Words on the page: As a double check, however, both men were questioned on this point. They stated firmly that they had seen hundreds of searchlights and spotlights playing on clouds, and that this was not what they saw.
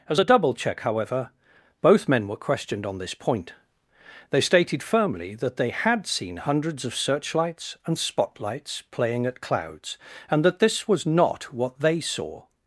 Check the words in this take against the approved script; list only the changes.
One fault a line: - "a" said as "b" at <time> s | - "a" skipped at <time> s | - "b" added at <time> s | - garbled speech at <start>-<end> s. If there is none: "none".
- "on" said as "at" at 9.3 s